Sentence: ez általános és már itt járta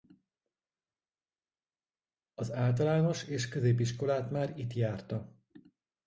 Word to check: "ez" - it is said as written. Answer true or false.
false